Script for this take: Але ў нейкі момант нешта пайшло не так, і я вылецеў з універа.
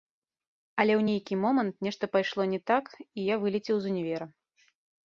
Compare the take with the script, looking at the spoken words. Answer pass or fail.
pass